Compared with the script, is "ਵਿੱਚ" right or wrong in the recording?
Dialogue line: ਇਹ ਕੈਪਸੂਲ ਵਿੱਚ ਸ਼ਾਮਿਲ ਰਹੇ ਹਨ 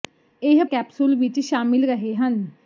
right